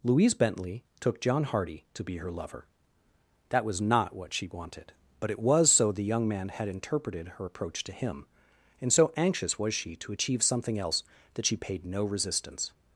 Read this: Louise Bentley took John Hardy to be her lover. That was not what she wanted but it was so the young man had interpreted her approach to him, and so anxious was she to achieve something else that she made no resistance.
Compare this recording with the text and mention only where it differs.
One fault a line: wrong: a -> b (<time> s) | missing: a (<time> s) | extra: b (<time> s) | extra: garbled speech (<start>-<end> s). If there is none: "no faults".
wrong: made -> paid (11.6 s)